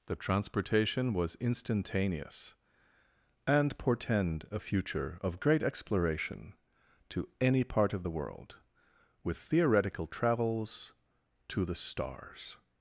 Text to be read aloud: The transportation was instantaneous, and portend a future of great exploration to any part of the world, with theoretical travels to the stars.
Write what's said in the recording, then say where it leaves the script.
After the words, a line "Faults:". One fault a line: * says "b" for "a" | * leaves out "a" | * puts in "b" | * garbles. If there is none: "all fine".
The transportation was instantaneous, and portend a future of great exploration to any part of the world, with theoretical travels to the stars.
Faults:
all fine